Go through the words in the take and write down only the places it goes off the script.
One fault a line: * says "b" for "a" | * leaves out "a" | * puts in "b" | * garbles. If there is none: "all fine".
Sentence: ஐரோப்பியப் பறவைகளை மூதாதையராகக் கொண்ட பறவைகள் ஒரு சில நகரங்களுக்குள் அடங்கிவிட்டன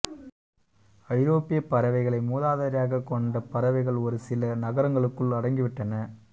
all fine